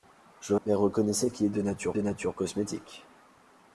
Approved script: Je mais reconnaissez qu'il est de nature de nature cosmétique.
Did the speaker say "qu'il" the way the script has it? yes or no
yes